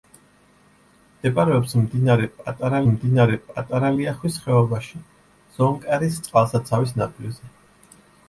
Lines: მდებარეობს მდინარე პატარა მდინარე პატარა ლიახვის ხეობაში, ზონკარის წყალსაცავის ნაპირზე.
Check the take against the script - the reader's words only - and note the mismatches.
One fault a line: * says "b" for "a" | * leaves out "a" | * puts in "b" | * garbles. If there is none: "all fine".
all fine